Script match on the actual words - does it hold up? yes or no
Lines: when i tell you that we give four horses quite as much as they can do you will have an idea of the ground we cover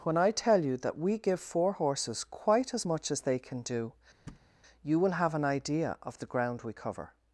yes